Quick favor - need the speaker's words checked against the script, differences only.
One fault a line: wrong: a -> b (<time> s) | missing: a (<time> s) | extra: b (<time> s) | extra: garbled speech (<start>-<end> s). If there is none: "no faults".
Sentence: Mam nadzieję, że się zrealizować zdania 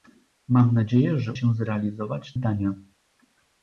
no faults